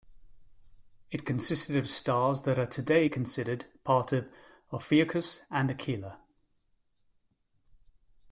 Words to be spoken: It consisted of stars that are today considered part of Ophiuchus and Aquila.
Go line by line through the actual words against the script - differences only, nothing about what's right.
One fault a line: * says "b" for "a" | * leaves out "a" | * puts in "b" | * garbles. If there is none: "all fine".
all fine